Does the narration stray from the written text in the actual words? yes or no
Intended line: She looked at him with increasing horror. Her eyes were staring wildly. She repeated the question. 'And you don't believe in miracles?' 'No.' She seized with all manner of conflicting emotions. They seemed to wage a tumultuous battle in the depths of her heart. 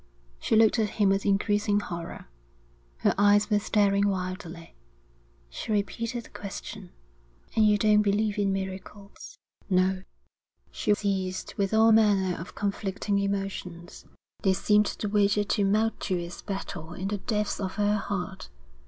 no